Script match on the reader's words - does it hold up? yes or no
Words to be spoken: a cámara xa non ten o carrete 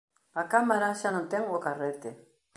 yes